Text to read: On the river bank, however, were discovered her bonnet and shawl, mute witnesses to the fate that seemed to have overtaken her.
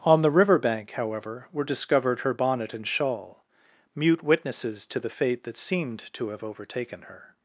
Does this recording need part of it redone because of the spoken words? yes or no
no